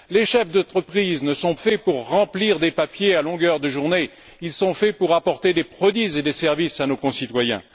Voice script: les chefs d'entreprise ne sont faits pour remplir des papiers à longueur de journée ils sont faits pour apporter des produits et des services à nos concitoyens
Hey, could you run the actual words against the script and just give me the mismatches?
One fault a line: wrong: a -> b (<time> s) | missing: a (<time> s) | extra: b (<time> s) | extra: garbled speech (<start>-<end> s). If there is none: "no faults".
no faults